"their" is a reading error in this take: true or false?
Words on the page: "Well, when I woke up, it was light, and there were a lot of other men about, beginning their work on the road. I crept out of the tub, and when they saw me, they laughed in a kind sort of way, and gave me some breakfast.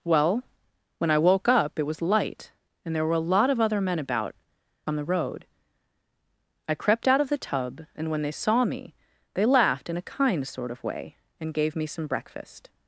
true